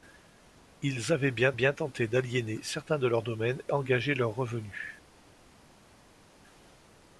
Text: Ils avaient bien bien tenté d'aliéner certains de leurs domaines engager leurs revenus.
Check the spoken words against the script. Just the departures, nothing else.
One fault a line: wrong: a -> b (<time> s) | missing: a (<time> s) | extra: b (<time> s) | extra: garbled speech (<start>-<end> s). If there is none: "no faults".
no faults